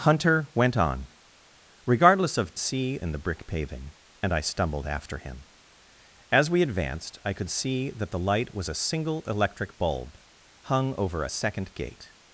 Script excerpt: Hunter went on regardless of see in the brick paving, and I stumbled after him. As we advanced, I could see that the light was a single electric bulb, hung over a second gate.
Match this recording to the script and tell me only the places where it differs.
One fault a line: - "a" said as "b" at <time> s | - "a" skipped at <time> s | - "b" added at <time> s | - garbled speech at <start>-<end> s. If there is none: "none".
none